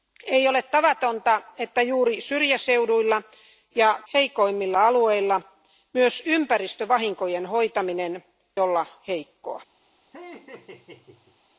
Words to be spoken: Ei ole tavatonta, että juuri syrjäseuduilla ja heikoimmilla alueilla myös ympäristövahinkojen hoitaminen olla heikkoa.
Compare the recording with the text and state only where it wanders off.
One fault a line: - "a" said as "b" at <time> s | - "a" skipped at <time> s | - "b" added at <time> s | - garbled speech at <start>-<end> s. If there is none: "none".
none